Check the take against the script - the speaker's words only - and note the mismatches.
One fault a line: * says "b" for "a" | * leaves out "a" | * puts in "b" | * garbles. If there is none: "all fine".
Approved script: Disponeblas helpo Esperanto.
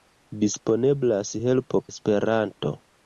all fine